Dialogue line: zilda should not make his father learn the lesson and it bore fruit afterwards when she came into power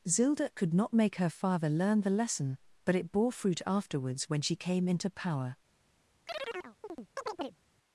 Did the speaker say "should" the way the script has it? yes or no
no